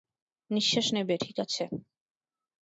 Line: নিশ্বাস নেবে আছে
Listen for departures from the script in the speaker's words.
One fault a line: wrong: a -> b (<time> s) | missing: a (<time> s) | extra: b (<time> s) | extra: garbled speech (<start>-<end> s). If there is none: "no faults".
extra: ঠিক (1.2 s)